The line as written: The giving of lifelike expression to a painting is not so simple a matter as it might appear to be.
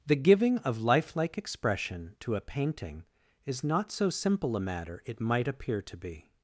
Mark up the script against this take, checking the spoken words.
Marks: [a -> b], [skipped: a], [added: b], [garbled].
The giving of lifelike expression to a painting is not so simple a matter [skipped: as] it might appear to be.